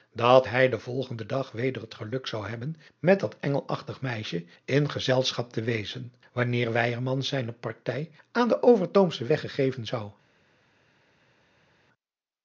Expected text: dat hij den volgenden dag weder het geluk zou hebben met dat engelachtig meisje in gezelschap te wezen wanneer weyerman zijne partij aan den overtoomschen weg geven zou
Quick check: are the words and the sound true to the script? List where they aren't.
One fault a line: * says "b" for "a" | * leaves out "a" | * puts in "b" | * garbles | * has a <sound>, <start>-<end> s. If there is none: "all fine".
all fine